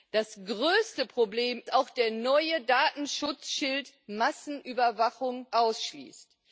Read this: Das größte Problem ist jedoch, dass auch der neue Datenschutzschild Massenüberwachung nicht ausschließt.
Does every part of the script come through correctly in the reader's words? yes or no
no